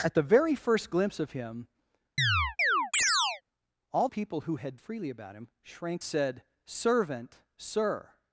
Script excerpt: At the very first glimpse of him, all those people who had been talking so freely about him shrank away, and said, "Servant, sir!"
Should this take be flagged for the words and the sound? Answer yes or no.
yes